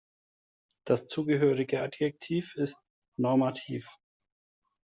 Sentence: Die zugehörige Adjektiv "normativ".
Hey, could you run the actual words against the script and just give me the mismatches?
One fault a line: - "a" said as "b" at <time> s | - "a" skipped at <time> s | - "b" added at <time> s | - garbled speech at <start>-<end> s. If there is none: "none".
- "Die" said as "Das" at 0.8 s
- "ist" added at 2.5 s